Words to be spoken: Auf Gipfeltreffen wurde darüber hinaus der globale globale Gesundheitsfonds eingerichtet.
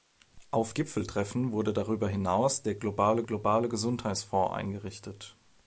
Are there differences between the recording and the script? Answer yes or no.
no